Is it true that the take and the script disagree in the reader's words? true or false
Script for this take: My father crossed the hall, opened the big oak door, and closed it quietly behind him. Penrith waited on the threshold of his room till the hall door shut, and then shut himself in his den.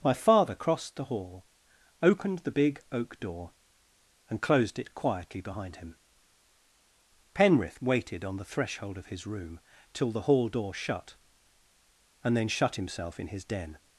false